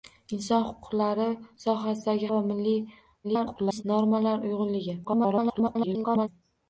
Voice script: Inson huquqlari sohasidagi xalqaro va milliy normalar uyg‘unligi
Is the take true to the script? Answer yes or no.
no